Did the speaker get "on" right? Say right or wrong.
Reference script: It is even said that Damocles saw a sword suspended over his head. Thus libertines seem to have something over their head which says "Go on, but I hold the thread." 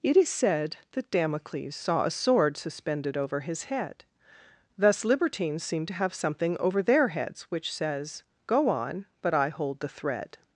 right